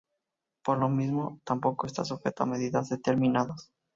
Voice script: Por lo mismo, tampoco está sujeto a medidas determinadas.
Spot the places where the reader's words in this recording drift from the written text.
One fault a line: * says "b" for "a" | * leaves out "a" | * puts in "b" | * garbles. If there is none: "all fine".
all fine